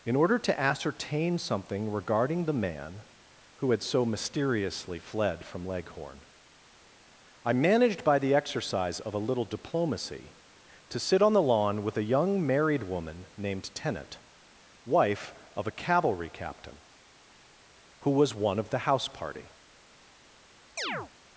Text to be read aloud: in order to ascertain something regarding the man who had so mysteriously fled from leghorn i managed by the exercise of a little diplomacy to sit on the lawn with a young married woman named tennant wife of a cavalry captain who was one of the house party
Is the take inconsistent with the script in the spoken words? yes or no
no